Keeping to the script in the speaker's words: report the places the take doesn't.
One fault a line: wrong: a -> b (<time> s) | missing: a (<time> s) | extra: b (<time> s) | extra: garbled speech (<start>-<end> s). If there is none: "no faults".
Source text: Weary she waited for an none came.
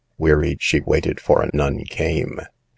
no faults